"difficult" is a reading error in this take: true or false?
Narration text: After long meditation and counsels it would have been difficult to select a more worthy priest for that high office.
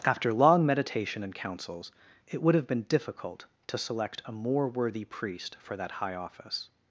false